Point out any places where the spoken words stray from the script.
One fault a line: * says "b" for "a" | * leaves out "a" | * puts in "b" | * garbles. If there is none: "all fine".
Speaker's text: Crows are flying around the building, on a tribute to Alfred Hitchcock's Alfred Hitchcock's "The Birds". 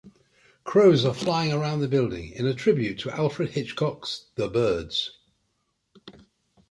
* says "in" for "on"
* leaves out "Alfred Hitchcock's"